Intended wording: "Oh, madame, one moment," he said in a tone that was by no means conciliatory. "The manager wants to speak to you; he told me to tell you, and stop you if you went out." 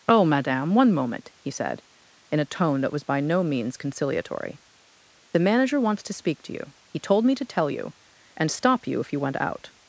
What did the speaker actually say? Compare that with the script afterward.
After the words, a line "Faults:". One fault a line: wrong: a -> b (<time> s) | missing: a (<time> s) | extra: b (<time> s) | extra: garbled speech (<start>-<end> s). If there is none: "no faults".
"Oh, madame, one moment," he said in a tone that was by no means conciliatory. "The manager wants to speak to you; he told me to tell you, and stop you if you went out."
Faults:
no faults